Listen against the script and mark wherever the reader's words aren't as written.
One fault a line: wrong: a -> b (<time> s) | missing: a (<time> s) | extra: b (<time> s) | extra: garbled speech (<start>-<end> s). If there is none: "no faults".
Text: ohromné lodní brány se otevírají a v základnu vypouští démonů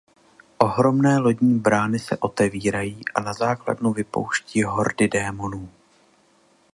wrong: v -> na (3.2 s)
extra: hordy (4.6 s)